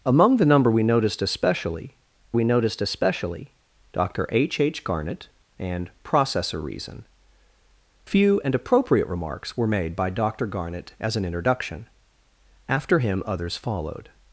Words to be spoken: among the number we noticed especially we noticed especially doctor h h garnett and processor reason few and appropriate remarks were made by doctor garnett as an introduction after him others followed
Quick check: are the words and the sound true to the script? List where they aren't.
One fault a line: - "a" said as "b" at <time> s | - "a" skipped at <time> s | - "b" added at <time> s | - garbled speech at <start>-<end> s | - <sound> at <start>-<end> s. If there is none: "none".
none